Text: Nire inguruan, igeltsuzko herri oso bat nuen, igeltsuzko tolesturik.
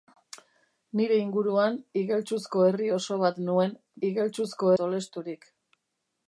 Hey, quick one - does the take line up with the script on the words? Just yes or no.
yes